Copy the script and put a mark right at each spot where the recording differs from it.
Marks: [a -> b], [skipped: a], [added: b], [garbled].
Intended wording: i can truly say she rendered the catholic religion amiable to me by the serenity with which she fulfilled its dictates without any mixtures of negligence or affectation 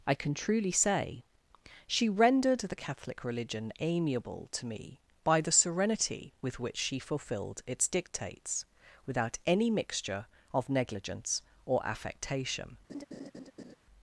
i can truly say she rendered the catholic religion amiable to me by the serenity with which she fulfilled its dictates without any [mixtures -> mixture] of negligence or affectation